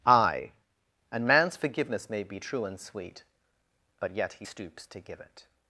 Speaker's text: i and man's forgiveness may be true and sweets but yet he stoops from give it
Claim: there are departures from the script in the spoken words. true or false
true